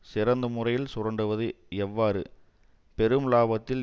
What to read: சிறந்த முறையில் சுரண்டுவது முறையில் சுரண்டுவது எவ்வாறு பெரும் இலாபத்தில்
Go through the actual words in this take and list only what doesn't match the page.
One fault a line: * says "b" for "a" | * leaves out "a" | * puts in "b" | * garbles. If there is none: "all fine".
* leaves out "முறையில் சுரண்டுவது"